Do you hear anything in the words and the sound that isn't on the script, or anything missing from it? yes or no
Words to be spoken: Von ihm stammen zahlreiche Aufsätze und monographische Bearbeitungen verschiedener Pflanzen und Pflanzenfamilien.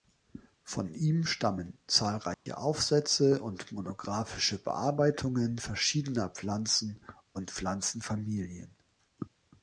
yes